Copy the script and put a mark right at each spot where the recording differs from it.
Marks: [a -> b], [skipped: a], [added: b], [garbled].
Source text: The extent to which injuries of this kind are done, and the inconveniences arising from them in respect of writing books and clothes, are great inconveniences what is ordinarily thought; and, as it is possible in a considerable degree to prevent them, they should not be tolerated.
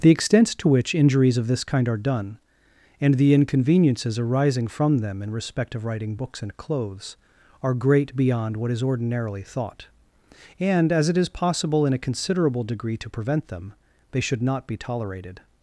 The extent to which injuries of this kind are done, and the inconveniences arising from them in respect of writing books and clothes, are great [inconveniences -> beyond] what is ordinarily thought; and, as it is possible in a considerable degree to prevent them, they should not be tolerated.